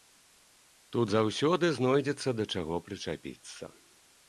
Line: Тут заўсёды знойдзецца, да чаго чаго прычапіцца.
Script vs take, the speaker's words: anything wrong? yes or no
yes